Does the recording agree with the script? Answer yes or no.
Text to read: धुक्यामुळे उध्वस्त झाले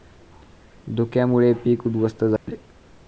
no